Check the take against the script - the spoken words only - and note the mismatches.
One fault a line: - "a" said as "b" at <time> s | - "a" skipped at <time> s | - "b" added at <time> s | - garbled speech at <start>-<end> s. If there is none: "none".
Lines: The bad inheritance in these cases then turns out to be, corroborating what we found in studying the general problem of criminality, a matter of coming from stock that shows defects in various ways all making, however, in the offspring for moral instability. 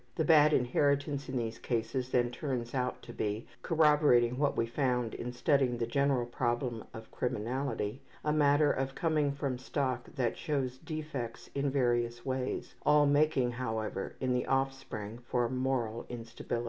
none